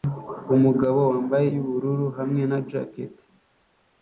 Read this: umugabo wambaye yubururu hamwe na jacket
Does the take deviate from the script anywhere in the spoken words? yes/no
no